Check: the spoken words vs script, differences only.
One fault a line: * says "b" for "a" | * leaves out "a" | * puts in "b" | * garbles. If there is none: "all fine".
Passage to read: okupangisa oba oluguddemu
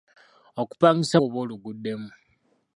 all fine